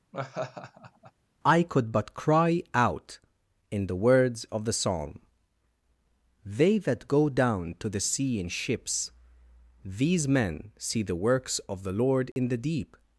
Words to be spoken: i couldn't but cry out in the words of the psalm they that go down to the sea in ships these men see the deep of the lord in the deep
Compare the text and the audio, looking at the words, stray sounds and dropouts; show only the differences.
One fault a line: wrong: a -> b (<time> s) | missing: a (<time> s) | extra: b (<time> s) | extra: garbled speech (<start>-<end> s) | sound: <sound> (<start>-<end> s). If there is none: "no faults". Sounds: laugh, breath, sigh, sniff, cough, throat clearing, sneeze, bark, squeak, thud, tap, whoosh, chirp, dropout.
sound: laugh (0.1-1.1 s)
wrong: couldn't -> could (1.6 s)
wrong: deep -> works (11.2 s)
sound: dropout (12.3-12.4 s)